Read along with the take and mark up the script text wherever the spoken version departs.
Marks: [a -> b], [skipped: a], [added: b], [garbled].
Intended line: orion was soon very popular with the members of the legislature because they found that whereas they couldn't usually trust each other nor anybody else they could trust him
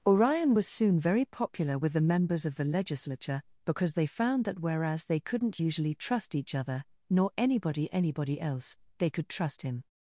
orion was soon very popular with the members of the legislature because they found that whereas they couldn't usually trust each other nor anybody [added: anybody] else they could trust him